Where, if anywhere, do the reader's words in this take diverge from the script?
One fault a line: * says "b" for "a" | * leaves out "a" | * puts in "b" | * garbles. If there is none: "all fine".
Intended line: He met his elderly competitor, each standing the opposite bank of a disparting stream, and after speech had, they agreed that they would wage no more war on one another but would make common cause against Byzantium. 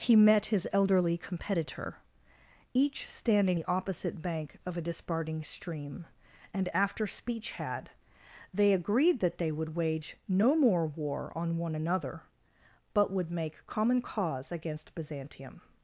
all fine